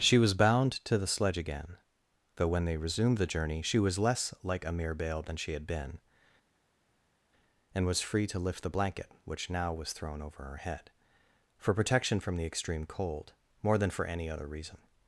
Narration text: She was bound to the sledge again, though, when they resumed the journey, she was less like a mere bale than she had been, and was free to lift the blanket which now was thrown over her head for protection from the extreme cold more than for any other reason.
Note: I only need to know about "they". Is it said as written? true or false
true